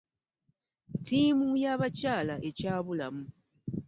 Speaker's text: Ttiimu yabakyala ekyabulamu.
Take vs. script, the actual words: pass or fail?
pass